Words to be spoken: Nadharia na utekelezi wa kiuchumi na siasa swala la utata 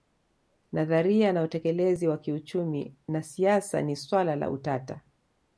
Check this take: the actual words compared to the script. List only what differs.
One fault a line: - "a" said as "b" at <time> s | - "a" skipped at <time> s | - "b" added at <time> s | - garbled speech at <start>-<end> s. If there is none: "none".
- "ni" added at 3.8 s